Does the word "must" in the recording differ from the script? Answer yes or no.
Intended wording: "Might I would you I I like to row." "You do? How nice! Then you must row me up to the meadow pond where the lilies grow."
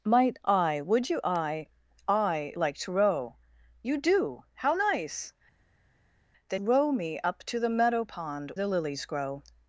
yes